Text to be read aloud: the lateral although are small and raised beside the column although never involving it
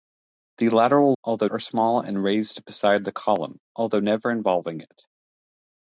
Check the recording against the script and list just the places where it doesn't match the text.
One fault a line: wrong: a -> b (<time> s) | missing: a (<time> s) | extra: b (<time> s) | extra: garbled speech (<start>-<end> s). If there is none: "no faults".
no faults